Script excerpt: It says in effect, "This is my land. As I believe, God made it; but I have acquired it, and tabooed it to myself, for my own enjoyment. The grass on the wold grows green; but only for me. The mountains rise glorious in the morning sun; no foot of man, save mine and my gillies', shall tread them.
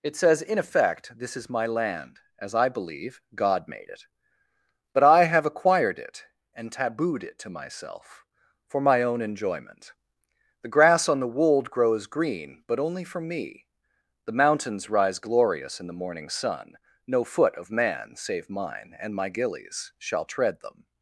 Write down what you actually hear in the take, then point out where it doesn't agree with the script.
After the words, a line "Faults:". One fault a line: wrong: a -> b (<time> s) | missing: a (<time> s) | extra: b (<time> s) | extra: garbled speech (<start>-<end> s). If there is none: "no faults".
It says in effect, "This is my land. As I believe, God made it; but I have acquired it, and tabooed it to myself, for my own enjoyment. The grass on the wold grows green; but only for me. The mountains rise glorious in the morning sun; no foot of man, save mine and my gillies', shall tread them.
Faults:
no faults